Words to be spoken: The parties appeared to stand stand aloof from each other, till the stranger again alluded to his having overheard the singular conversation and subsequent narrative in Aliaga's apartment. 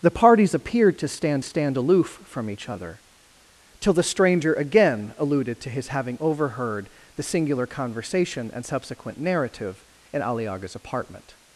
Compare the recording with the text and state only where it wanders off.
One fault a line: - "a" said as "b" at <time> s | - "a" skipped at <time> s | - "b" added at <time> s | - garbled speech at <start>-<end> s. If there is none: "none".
none